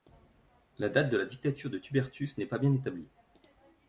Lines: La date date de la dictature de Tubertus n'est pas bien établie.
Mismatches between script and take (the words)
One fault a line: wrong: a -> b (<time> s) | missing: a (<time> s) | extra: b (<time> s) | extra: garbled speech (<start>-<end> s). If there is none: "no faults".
missing: date (1.1 s)